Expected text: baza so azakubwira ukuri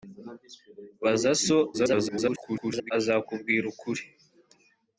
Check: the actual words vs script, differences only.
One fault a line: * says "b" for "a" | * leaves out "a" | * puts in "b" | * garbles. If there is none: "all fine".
* garbles